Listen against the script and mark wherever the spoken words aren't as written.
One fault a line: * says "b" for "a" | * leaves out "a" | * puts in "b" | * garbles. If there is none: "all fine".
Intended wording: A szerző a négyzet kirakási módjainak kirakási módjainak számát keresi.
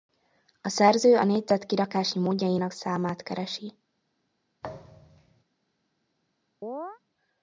* leaves out "kirakási módjainak"